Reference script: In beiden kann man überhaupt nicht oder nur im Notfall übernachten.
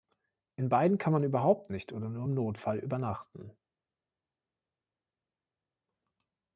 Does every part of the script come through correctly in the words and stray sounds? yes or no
yes